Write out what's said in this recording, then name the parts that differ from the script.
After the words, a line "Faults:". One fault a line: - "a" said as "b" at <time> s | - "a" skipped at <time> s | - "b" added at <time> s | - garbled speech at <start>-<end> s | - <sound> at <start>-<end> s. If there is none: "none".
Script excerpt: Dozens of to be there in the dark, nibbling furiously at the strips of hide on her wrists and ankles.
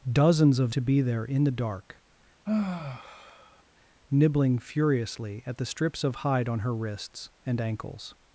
Dozens of to be there in the dark, nibbling furiously at the strips of hide on her wrists and ankles.
Faults:
- sigh at 2.5-3.6 s